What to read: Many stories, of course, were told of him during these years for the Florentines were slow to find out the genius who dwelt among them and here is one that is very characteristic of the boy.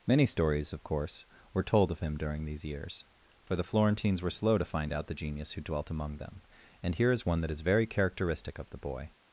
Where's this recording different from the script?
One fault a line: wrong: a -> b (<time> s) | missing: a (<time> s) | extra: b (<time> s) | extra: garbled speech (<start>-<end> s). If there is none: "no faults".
no faults